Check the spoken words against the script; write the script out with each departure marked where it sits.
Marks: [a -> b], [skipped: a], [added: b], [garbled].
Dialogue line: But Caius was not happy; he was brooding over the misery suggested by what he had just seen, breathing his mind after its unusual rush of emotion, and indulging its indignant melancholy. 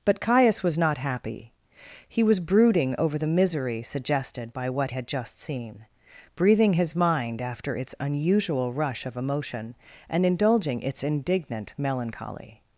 But Caius was not happy; he was brooding over the misery suggested by what [skipped: he] had just seen, breathing his mind after its unusual rush of emotion, and indulging its indignant melancholy.